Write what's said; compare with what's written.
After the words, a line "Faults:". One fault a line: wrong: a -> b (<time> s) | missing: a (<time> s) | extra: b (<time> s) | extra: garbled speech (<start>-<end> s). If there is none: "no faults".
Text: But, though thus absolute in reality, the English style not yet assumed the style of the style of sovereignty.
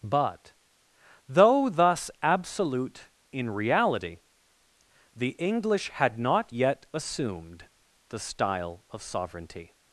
But, though thus absolute in reality, the English had not yet assumed the style of sovereignty.
Faults:
wrong: style -> had (5.9 s)
missing: the style of (9.0 s)